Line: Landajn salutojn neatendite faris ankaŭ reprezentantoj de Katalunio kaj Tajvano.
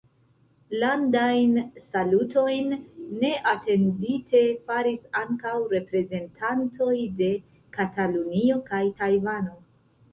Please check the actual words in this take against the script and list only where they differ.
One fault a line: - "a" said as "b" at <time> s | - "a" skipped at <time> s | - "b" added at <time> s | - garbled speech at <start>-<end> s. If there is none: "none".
none